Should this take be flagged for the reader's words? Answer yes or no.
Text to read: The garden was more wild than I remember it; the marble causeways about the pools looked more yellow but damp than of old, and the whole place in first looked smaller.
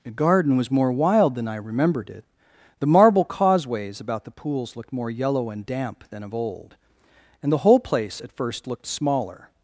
yes